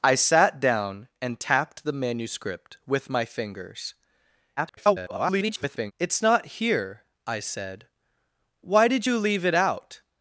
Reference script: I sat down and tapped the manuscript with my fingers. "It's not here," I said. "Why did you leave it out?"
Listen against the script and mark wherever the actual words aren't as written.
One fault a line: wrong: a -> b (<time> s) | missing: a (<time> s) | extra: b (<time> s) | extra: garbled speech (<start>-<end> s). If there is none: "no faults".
extra: garbled speech (4.6-5.9 s)